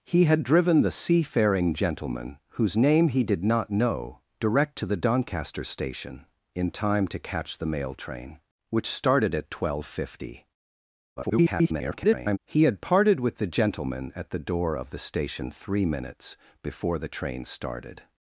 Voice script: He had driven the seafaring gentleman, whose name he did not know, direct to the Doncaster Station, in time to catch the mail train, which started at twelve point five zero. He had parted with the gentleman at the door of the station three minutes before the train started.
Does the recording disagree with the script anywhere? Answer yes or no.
yes